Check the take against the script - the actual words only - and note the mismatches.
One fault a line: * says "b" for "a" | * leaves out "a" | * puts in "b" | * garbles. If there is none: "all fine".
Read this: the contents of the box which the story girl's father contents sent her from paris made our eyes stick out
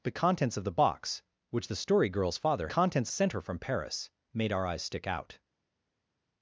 all fine